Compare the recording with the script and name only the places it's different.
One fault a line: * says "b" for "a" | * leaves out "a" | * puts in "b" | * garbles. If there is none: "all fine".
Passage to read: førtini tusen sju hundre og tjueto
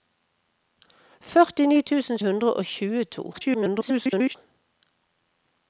* leaves out "sju"
* garbles